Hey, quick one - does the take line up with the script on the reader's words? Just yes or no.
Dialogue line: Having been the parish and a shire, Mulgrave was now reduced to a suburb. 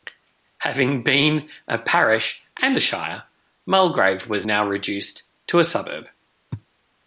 no